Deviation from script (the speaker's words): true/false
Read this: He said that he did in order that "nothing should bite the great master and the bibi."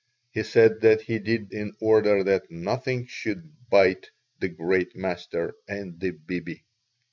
false